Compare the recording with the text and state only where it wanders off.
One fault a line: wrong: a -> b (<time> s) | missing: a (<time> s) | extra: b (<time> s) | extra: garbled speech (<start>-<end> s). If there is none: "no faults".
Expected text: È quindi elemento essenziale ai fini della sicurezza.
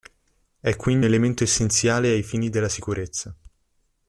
no faults